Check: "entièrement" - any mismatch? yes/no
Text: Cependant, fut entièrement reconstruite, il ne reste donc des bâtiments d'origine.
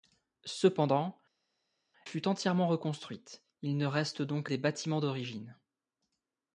no